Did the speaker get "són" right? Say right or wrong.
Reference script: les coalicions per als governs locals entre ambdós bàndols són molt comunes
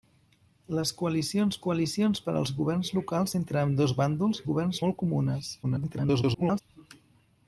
wrong